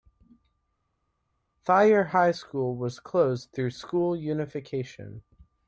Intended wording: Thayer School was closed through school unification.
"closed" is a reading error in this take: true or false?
false